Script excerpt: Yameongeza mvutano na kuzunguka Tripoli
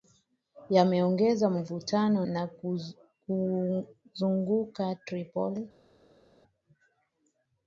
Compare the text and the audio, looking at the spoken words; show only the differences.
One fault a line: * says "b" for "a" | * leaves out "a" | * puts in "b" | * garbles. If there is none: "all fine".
all fine